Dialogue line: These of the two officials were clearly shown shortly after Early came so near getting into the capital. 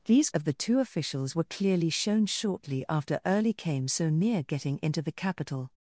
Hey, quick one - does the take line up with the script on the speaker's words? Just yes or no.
yes